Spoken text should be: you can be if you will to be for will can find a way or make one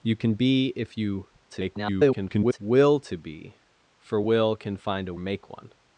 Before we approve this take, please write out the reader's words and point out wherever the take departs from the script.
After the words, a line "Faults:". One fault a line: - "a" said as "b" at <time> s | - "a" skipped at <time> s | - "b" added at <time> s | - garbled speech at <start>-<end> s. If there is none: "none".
you can be if you [garbled] will to be for will can find a make one
Faults:
- garbled speech at 1.5-2.6 s
- "way or" skipped at 5.1 s